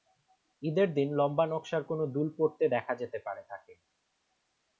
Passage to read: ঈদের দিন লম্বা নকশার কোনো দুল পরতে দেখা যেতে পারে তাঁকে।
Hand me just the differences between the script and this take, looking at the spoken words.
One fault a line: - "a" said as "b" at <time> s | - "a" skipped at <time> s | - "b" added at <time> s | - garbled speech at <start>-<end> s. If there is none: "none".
none